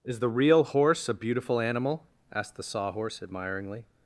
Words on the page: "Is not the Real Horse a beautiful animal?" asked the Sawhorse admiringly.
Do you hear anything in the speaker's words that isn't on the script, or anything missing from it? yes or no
yes